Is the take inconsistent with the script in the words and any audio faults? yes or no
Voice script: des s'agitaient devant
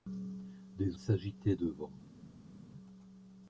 no